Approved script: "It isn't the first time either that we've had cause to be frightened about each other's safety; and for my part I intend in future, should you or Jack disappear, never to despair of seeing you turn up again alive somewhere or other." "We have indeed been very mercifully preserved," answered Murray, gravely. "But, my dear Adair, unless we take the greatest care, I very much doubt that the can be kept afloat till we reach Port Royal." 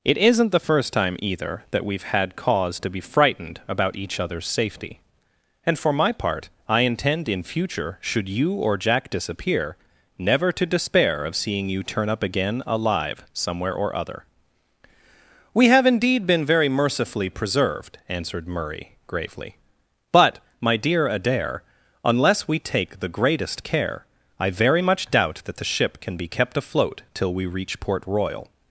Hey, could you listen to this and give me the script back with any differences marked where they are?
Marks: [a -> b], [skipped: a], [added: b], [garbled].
"It isn't the first time either that we've had cause to be frightened about each other's safety; and for my part I intend in future, should you or Jack disappear, never to despair of seeing you turn up again alive somewhere or other." "We have indeed been very mercifully preserved," answered Murray, gravely. "But, my dear Adair, unless we take the greatest care, I very much doubt that the [added: ship] can be kept afloat till we reach Port Royal."